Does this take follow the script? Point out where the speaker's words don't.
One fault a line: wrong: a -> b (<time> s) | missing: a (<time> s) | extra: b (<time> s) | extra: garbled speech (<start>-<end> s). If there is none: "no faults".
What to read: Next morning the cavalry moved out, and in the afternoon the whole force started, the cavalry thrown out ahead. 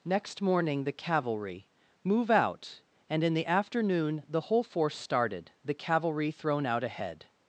wrong: moved -> move (2.0 s)